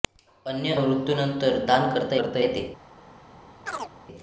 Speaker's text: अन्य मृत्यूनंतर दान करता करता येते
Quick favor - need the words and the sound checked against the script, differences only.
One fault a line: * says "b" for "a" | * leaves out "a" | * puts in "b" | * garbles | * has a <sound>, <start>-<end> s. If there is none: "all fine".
* has a chirp, 3.7-3.9 s